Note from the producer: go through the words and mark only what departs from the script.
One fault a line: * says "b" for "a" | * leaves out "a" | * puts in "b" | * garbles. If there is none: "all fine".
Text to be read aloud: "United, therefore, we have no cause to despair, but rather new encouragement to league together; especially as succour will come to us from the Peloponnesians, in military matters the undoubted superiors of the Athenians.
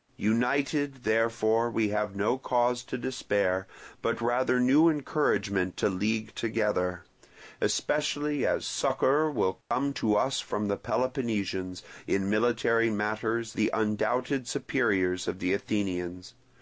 all fine